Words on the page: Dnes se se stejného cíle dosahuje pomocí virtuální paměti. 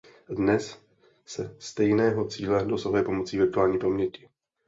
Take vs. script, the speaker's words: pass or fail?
fail